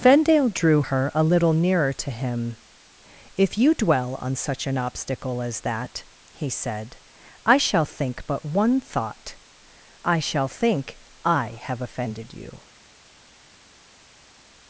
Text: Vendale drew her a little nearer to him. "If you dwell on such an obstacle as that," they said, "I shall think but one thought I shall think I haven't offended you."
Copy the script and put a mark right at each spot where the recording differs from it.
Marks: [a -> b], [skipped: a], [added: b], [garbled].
Vendale drew her a little nearer to him. "If you dwell on such an obstacle as that," [they -> he] said, "I shall think but one thought I shall think I [haven't -> have] offended you."